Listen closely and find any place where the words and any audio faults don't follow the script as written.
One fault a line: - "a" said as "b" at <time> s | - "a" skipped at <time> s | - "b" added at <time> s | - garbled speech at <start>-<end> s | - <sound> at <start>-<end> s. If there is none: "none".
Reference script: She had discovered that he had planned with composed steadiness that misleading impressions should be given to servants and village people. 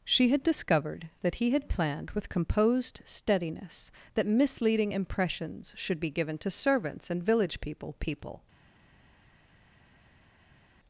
- "people" added at 8.0 s